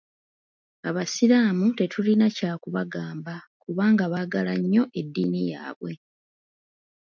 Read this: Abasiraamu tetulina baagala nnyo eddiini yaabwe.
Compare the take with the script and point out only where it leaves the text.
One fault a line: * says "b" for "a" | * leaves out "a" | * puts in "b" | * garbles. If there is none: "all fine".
* puts in "kya kubagamba kubanga"